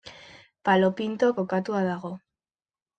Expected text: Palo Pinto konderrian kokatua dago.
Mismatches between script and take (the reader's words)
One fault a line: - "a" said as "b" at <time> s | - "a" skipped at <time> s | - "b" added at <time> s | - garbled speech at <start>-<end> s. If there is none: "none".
- "konderrian" skipped at 1.3 s